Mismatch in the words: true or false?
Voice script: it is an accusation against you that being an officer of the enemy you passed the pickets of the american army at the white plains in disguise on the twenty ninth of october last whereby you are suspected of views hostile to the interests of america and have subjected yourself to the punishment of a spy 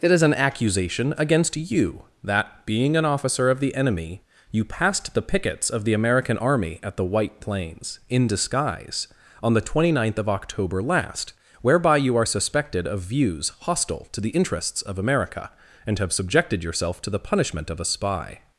false